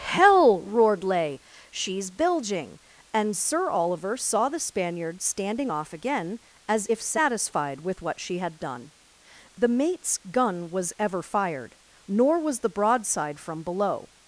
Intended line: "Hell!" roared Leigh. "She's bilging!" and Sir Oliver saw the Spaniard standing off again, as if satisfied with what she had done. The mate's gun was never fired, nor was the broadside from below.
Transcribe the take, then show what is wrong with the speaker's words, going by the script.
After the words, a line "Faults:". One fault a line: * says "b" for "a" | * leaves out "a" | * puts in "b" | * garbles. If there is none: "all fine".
"Hell!" roared Leigh. "She's bilging!" and Sir Oliver saw the Spaniard standing off again, as if satisfied with what she had done. The mate's gun was ever fired, nor was the broadside from below.
Faults:
* says "ever" for "never"